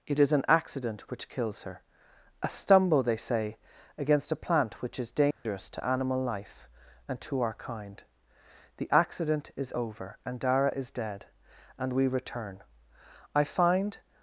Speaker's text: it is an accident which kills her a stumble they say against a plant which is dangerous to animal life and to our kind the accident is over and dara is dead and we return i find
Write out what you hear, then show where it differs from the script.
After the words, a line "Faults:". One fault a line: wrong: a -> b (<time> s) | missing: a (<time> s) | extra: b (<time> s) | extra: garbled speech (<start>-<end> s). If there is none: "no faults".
it is an accident which kills her a stumble they say against a plant which is dangerous to animal life and to our kind the accident is over and dara is dead and we return i find
Faults:
no faults